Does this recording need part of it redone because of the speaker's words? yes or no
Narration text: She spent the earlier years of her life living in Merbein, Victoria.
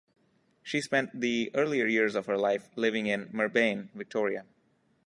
no